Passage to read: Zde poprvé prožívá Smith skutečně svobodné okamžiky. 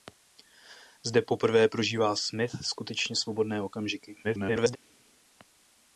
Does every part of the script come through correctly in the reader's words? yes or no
no